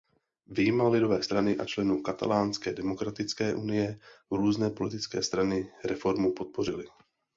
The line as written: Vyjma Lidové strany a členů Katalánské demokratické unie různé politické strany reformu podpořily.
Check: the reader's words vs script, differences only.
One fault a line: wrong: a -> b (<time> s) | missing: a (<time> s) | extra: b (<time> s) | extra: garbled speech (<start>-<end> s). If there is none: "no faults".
no faults